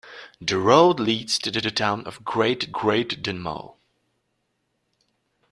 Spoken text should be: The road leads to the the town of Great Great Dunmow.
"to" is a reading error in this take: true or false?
false